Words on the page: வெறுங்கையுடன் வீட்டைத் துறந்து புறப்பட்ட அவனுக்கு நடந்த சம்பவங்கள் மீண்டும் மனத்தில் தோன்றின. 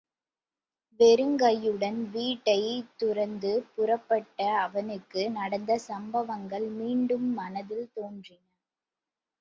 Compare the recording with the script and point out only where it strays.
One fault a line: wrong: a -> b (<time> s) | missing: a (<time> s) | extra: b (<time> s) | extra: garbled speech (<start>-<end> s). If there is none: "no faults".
no faults